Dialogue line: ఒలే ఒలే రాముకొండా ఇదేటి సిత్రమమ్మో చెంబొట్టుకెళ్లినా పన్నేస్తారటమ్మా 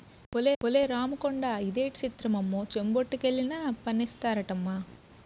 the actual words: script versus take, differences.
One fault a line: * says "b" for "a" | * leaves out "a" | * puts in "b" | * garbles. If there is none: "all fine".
all fine